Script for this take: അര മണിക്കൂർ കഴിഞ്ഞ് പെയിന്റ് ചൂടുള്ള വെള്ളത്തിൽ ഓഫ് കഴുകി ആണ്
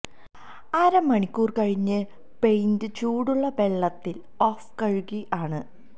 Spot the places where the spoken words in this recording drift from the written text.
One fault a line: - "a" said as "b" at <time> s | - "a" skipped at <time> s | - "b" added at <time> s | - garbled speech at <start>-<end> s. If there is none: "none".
none